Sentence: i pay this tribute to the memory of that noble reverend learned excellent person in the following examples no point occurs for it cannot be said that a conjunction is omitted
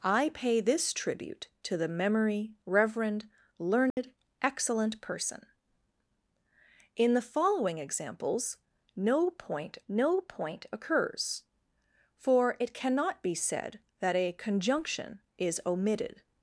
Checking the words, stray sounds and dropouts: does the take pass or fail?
fail